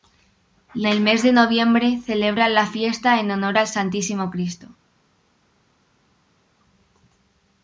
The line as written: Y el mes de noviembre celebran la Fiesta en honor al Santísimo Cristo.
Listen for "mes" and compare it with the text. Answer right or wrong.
right